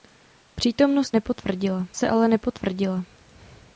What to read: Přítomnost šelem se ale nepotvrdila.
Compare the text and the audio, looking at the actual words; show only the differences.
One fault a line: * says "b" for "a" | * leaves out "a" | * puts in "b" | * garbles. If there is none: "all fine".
* says "nepotvrdila" for "šelem"